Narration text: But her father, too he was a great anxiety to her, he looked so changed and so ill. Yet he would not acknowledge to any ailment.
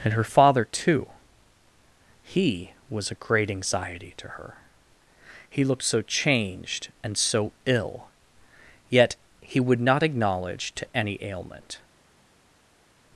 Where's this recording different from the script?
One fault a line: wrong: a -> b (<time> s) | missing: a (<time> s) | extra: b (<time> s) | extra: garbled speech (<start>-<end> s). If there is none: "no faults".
wrong: But -> And (0.0 s)